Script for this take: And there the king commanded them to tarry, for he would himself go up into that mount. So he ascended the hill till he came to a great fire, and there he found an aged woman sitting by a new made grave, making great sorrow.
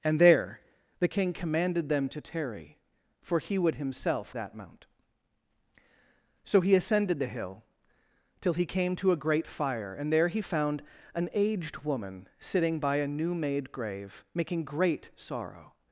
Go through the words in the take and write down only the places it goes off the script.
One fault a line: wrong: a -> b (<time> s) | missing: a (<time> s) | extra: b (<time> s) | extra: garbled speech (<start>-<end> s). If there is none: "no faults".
missing: go up into (4.4 s)